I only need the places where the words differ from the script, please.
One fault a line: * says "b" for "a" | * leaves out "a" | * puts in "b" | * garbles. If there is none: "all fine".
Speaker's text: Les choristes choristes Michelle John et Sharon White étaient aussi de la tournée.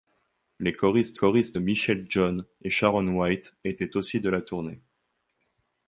all fine